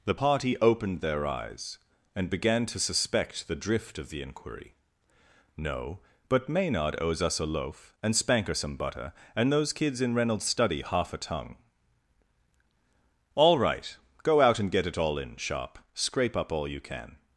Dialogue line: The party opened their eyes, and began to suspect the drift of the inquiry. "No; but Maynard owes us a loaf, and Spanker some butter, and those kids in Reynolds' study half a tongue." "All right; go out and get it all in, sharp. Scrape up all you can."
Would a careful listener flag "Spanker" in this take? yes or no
no